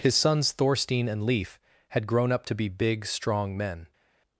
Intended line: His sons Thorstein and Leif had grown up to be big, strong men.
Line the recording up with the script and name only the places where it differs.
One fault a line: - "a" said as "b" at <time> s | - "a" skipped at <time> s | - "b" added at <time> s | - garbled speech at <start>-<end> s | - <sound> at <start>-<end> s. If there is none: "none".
none